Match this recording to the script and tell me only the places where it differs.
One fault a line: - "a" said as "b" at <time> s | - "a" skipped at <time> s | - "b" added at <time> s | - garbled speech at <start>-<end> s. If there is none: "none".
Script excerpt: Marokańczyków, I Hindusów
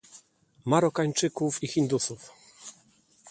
none